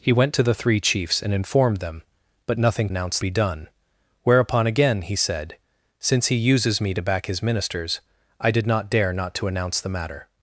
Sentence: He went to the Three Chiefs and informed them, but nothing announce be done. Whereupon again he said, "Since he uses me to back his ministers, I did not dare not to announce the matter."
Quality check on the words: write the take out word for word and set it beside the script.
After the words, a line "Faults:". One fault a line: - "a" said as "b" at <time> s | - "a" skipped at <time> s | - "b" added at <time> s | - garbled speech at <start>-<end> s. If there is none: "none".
He went to the Three Chiefs and informed them, but nothing announce be done. Whereupon again he said, "Since he uses me to back his ministers, I did not dare not to announce the matter."
Faults:
none